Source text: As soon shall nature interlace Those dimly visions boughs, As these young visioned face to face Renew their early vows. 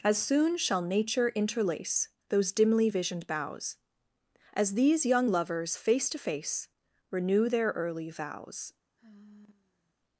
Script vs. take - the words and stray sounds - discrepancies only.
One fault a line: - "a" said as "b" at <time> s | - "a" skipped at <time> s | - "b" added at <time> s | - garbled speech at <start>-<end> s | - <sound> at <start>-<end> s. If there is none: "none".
- "visions" said as "visioned" at 2.9 s
- "visioned" said as "lovers" at 5.3 s
- sigh at 9.0-9.9 s